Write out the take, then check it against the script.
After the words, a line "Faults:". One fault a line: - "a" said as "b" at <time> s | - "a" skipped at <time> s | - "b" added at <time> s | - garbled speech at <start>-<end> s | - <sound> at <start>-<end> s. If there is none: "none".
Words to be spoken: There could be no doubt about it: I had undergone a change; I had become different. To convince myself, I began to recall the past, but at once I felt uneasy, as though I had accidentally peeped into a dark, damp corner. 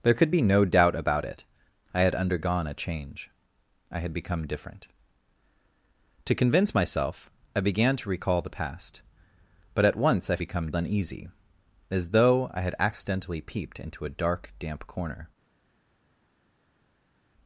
There could be no doubt about it: I had undergone a change; I had become different. To convince myself, I began to recall the past, but at once I become uneasy, as though I had accidentally peeped into a dark, damp corner.
Faults:
- "felt" said as "become" at 10.4 s